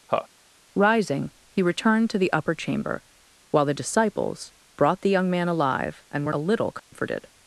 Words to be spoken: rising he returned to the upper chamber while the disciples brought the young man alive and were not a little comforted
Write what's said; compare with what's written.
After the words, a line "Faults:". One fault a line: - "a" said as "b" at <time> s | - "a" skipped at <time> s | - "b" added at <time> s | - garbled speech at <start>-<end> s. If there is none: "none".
rising he returned to the upper chamber while the disciples brought the young man alive and were a little comforted
Faults:
- "not" skipped at 6.3 s